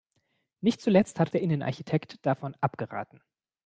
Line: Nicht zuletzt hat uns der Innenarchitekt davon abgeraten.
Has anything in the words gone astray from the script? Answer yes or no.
yes